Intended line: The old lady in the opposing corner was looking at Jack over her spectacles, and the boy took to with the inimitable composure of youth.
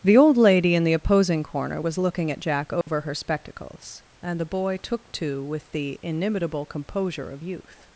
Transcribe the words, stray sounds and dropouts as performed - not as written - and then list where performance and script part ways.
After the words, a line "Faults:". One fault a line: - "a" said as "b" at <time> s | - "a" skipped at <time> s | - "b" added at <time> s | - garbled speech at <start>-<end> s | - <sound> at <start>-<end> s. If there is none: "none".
The old lady in the opposing corner was looking at Jack over her spectacles, and the boy took to with the inimitable composure of youth.
Faults:
- dropout at 2.8-2.9 s